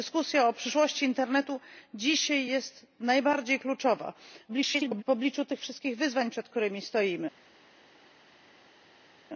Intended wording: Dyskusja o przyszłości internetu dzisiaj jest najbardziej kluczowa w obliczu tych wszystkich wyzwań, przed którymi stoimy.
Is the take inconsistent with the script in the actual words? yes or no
yes